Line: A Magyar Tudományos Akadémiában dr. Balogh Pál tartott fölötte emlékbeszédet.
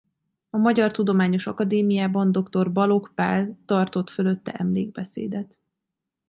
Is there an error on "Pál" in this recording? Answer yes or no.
no